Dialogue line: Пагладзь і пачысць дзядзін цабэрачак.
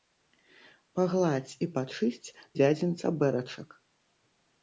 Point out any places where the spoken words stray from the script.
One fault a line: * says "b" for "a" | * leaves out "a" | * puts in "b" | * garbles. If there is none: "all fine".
all fine